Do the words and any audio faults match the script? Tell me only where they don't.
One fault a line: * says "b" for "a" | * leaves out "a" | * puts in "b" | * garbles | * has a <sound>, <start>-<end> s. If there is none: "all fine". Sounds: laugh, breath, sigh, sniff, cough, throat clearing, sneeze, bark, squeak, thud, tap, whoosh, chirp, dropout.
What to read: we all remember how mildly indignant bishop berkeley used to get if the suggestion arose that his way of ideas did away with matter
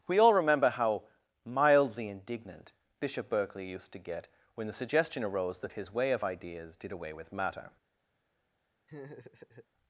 * says "when" for "if"
* has a laugh, 8.9-9.7 s